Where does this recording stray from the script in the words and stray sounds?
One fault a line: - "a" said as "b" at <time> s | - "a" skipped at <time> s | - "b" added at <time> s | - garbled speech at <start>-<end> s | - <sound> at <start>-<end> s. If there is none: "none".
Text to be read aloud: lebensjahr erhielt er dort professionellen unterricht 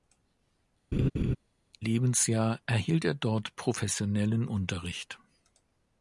- laugh at 0.9-1.4 s